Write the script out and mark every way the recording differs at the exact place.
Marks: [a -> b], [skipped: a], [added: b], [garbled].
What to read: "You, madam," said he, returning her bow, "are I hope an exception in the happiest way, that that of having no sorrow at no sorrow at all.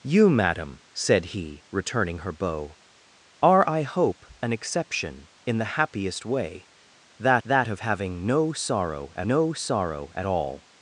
"You, madam," said he, returning her bow, "are I hope an exception in the happiest way, that that of having no sorrow at no sorrow at all.